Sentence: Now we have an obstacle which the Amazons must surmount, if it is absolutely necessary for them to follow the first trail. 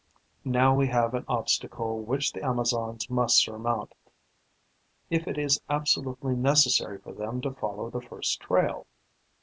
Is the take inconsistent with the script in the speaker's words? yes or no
no